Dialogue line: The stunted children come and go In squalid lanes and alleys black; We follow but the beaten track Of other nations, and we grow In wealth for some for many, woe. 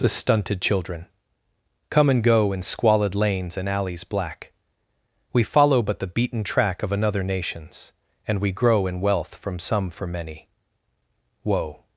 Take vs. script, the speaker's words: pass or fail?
fail